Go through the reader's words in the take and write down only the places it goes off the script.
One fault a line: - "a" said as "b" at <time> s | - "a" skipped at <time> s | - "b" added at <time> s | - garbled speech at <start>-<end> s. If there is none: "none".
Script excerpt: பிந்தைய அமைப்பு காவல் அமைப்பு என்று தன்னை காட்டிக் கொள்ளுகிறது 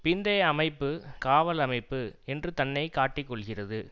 none